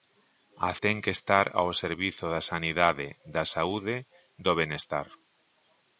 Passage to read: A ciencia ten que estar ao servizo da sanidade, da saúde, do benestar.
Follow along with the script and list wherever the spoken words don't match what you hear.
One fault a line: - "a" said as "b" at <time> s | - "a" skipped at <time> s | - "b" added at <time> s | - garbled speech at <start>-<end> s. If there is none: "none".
- "ciencia" skipped at 0.7 s